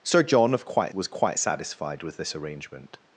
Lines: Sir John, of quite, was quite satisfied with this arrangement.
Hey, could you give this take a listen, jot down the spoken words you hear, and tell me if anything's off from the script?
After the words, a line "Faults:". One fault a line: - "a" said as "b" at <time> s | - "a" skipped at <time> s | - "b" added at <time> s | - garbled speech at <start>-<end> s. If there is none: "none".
Sir John, of quite, was quite satisfied with this arrangement.
Faults:
none